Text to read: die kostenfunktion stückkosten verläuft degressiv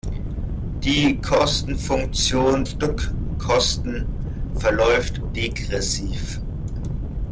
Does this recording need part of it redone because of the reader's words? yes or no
no